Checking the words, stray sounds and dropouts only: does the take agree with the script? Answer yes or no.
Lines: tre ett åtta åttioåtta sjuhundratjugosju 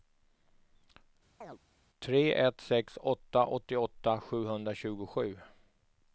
no